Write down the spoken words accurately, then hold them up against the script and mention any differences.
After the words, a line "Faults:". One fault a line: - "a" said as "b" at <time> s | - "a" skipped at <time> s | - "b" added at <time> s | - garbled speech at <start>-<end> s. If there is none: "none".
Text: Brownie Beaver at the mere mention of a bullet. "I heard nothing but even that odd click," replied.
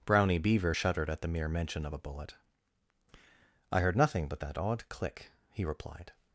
Brownie Beaver shuddered at the mere mention of a bullet. "I heard nothing but that odd click," he replied.
Faults:
- "shuddered" added at 0.7 s
- "even" skipped at 4.4 s
- "he" added at 5.5 s